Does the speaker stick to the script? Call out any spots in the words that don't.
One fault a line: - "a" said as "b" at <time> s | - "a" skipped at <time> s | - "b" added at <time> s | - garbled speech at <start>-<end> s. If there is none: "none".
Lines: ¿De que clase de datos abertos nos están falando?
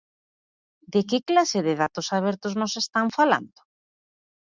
none